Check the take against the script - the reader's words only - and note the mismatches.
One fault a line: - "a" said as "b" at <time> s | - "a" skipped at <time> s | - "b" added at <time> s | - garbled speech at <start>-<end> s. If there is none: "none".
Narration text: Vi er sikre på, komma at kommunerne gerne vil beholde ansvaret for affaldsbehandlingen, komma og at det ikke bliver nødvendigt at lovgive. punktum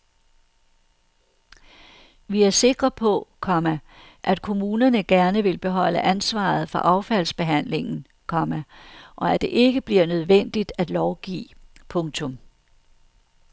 none